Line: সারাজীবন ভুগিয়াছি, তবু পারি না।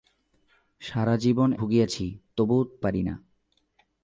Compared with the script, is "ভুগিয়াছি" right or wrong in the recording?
right